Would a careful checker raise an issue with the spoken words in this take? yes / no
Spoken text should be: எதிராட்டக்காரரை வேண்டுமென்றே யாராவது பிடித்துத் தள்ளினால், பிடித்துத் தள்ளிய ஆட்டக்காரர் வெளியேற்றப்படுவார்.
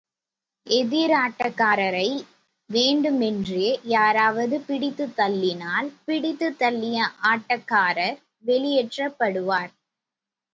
no